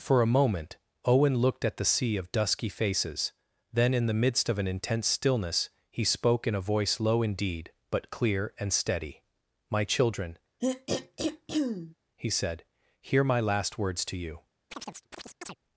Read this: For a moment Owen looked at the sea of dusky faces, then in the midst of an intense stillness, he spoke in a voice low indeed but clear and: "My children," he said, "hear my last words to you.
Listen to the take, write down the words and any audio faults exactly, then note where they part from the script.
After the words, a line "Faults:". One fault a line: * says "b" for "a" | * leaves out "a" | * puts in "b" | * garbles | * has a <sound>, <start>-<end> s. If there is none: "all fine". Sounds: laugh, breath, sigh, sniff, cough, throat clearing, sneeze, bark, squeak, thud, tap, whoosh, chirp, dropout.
For a moment Owen looked at the sea of dusky faces, then in the midst of an intense stillness, he spoke in a voice low indeed but clear and steady: "My children," he said, "hear my last words to you.
Faults:
* puts in "steady"
* has a throat clearing, 10.6-11.9 s
* has a chirp, 14.7-15.6 s